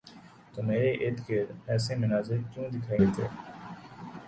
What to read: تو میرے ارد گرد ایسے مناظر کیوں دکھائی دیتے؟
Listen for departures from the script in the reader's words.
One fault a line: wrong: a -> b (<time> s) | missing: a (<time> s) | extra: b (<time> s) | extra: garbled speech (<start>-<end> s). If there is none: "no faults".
no faults